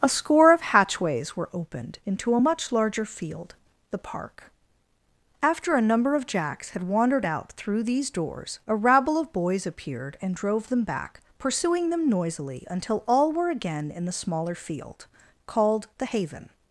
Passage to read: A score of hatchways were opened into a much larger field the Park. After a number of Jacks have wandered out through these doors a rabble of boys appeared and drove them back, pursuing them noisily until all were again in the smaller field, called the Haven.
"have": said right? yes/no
no